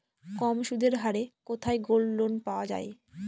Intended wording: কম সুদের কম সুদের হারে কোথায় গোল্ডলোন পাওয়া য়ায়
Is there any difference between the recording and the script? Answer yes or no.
yes